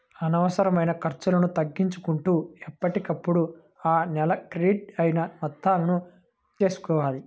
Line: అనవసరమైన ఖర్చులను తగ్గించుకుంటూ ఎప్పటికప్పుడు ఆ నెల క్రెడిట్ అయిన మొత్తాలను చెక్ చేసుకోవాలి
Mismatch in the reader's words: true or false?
true